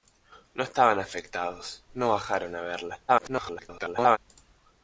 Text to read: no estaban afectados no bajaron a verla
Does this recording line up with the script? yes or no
no